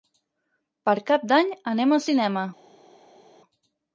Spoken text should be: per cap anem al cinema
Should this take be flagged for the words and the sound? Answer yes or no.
yes